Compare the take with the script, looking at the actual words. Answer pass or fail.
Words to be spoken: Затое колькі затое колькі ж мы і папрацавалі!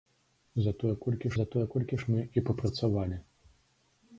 pass